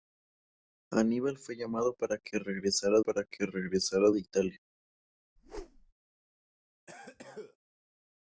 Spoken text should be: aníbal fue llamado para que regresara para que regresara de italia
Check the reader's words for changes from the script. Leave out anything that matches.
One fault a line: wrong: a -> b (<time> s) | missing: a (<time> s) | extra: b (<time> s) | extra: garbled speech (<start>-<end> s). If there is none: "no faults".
no faults